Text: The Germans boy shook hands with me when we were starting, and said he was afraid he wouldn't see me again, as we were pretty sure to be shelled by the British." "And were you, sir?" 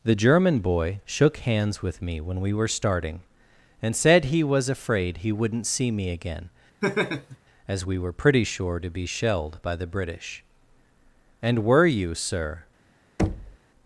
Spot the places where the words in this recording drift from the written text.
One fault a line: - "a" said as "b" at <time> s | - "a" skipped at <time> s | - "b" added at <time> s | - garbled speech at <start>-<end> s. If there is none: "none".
- "Germans" said as "German" at 0.1 s